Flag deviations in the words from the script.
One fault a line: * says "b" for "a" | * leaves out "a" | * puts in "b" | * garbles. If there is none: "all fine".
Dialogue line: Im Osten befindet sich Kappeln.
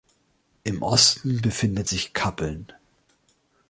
all fine